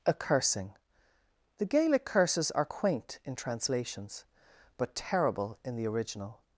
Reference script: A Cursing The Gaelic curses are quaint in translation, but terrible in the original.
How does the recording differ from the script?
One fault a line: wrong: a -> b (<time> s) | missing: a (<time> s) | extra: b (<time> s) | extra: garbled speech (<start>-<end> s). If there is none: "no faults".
wrong: translation -> translations (3.3 s)